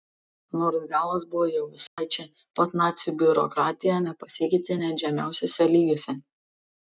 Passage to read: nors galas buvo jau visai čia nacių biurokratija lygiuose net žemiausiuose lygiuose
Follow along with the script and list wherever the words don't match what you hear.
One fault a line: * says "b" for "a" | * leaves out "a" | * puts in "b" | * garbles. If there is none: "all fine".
* puts in "pat"
* says "nepasikeitė" for "lygiuose"